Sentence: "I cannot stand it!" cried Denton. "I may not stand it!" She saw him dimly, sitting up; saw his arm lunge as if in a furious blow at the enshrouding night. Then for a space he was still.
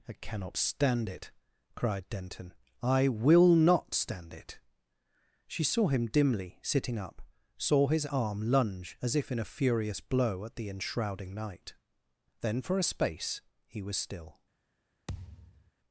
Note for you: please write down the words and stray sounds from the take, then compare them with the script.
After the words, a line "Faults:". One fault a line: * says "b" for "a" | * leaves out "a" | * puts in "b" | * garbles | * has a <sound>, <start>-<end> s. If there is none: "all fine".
"I cannot stand it!" cried Denton. "I will not stand it!" She saw him dimly, sitting up; saw his arm lunge as if in a furious blow at the enshrouding night. Then for a space he was still.
Faults:
* says "will" for "may"
* has a thud, 15.1-15.7 s